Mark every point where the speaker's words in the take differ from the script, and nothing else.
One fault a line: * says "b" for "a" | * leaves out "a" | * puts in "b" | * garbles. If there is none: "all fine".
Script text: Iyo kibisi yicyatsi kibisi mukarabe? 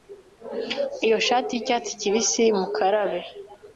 * says "shati" for "kibisi"